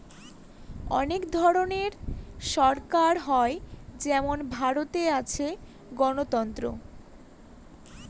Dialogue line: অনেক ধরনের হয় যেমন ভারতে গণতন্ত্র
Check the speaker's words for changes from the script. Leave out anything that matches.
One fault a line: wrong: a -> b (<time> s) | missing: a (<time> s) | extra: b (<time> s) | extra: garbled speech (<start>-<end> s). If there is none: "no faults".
extra: সরকার (2.5 s)
extra: আছে (5.2 s)